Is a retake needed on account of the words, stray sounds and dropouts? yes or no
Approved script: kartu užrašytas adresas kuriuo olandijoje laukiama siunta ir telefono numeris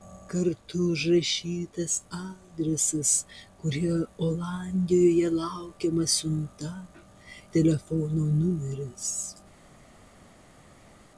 yes